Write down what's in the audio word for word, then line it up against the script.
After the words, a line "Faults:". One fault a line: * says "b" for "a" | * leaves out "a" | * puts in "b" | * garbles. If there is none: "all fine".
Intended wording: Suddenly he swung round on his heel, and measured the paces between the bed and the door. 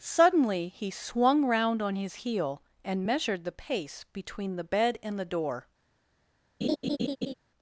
Suddenly he swung round on his heel, and measured the pace between the bed and the door.
Faults:
* says "pace" for "paces"